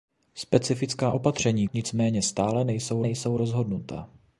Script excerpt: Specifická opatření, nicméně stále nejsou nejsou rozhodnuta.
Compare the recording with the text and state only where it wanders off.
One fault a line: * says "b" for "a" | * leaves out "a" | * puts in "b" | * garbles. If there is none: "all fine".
all fine